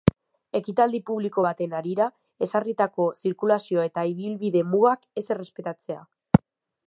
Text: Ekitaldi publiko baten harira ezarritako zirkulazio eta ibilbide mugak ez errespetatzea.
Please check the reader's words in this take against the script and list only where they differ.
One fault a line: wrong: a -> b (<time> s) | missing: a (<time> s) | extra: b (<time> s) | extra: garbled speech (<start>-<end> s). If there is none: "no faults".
no faults